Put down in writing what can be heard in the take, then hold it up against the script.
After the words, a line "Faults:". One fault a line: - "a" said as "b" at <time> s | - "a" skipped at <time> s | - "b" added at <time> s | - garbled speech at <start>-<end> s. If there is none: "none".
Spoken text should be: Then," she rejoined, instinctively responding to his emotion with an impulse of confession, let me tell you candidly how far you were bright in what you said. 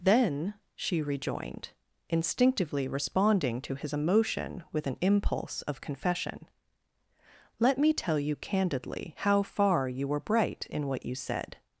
Then," she rejoined, instinctively responding to his emotion with an impulse of confession, let me tell you candidly how far you were bright in what you said.
Faults:
none